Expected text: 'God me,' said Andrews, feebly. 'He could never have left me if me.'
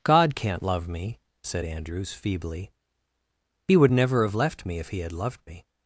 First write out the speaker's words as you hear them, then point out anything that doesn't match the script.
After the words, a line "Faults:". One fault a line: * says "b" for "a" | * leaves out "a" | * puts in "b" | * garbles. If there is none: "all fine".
'God can't love me,' said Andrews, feebly. 'He would never have left me if he had loved me.'
Faults:
* puts in "can't love"
* says "would" for "could"
* puts in "he had loved"